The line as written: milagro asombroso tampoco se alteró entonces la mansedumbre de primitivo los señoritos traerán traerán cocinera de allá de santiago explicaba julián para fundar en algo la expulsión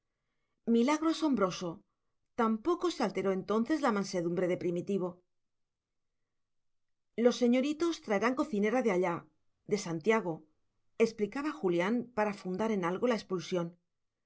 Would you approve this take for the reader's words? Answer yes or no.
no